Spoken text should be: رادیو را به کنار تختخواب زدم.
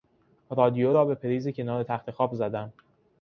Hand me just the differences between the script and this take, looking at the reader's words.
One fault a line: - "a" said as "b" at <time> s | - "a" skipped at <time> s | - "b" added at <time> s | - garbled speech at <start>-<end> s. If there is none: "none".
- "پریز" added at 1.1 s